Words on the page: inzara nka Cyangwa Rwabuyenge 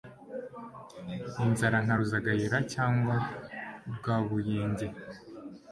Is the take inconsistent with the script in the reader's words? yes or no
yes